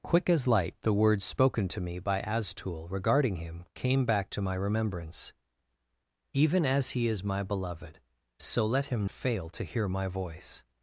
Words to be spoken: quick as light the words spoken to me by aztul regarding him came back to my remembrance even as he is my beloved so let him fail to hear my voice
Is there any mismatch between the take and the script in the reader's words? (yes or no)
no